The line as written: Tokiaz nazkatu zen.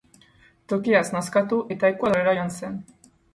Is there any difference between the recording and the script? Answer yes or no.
yes